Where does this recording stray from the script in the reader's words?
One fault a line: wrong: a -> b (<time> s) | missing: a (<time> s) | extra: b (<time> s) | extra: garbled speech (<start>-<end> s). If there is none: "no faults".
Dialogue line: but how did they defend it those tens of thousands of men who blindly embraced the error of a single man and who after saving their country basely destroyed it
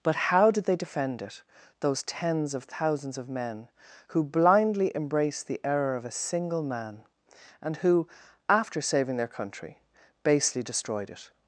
no faults